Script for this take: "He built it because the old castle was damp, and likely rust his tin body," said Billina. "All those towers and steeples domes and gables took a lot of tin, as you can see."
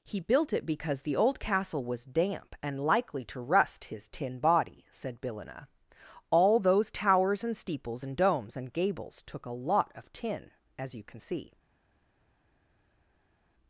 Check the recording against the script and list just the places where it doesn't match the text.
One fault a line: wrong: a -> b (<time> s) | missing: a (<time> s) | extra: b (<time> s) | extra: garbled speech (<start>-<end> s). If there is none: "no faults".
extra: to (3.2 s)
extra: and (8.0 s)